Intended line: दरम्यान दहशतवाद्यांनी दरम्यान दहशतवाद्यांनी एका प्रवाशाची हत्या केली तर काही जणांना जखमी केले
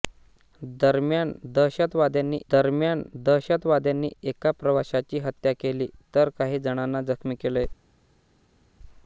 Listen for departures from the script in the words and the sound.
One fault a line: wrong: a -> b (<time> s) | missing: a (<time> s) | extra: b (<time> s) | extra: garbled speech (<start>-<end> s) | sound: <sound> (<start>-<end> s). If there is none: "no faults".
no faults